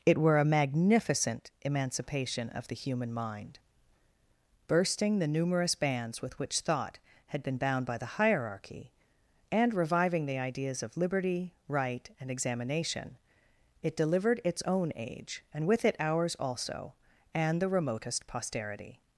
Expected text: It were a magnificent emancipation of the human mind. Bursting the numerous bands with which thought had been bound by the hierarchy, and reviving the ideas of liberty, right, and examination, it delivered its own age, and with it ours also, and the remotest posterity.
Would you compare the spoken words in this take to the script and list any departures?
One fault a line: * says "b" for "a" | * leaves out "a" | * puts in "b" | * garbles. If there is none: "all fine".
all fine